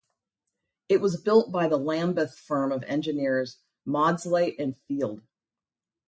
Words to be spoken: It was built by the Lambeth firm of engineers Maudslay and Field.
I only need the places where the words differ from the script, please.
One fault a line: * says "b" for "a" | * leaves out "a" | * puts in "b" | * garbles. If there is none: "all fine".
all fine